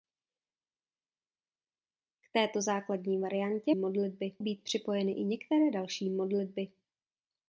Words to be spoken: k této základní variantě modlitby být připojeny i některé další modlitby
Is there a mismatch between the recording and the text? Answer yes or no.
no